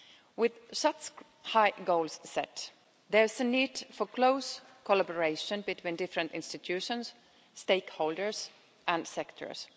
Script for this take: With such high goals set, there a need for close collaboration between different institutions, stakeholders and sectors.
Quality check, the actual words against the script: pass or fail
fail